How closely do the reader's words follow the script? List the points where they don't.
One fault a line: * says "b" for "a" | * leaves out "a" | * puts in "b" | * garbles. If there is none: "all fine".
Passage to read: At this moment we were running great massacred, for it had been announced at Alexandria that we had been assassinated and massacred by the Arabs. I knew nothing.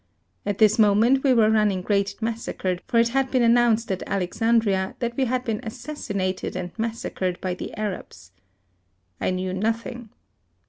all fine